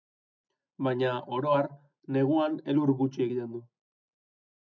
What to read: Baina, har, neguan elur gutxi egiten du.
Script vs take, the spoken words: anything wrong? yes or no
yes